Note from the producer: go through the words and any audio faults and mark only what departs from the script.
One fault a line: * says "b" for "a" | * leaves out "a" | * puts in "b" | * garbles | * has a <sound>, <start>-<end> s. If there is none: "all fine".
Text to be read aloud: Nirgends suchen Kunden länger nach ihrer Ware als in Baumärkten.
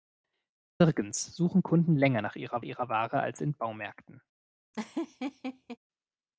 * puts in "ihrer"
* has a laugh, 4.7-5.8 s